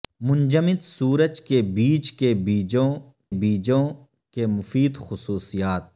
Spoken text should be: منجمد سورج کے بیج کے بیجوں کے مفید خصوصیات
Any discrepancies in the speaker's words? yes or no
yes